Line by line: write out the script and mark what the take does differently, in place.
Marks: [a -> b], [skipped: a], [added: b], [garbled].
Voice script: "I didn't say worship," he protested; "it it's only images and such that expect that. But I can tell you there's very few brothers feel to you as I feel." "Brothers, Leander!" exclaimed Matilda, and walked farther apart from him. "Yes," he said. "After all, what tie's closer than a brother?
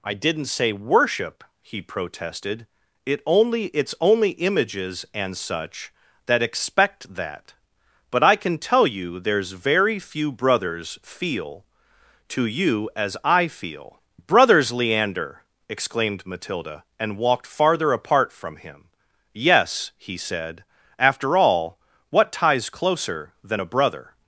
"I didn't say worship," he protested; "it [added: only] it's only images and such that expect that. But I can tell you there's very few brothers feel to you as I feel." "Brothers, Leander!" exclaimed Matilda, and walked farther apart from him. "Yes," he said. "After all, what tie's closer than a brother?